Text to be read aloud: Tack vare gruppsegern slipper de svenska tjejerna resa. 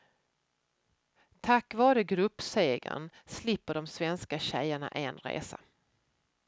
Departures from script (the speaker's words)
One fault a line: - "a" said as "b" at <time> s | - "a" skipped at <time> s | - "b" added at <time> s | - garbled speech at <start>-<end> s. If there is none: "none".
- "en" added at 4.9 s